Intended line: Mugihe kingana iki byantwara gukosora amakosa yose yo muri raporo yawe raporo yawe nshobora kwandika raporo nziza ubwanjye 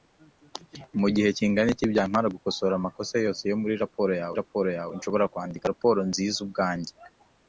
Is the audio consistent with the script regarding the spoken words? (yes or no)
yes